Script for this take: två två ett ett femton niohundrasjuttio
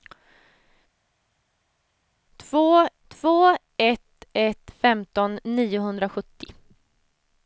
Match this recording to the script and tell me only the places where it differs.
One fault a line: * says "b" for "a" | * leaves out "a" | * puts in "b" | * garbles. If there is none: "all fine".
all fine